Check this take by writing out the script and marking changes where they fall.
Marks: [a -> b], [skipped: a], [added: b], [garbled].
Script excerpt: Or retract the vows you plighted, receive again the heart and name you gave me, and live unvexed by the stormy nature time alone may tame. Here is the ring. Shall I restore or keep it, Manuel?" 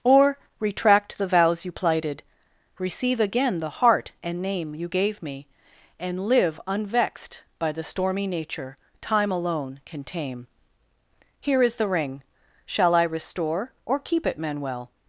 Or retract the vows you plighted, receive again the heart and name you gave me, and live unvexed by the stormy nature time alone [may -> can] tame. Here is the ring. Shall I restore or keep it, Manuel?"